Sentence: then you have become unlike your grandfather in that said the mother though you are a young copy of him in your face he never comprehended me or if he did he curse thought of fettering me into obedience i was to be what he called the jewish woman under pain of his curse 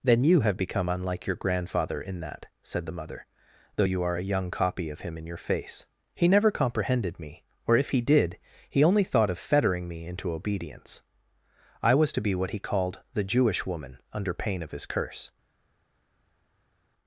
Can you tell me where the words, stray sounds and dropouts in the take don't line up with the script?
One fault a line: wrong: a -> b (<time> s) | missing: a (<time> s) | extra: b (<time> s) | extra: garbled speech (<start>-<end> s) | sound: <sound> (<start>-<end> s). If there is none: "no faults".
wrong: curse -> only (8.8 s)